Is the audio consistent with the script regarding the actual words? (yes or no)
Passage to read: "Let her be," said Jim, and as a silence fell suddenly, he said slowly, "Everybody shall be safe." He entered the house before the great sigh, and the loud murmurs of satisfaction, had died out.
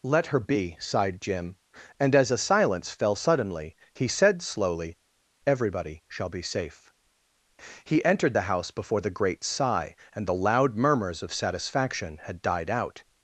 no